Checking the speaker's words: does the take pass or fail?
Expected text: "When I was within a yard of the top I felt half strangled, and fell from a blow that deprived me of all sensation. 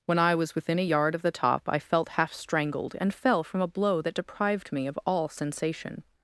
pass